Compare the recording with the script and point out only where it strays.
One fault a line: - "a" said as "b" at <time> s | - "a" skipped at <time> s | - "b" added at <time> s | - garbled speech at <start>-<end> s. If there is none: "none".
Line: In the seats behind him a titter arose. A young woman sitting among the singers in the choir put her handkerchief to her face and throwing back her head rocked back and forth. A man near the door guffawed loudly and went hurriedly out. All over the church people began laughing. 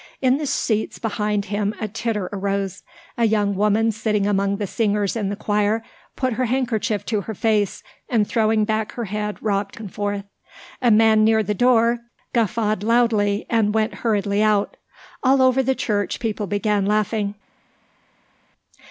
- "back" skipped at 9.8 s